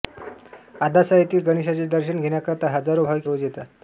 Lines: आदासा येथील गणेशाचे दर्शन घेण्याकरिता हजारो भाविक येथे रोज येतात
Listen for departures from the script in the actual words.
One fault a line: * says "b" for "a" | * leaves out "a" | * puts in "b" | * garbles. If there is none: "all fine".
* leaves out "येथे"